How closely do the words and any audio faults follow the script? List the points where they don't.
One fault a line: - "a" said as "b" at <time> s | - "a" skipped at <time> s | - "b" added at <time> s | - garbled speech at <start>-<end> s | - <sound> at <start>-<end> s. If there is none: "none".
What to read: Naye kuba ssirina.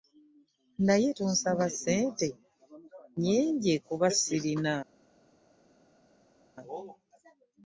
- "tonsaba ssente nnyingi" added at 1.2 s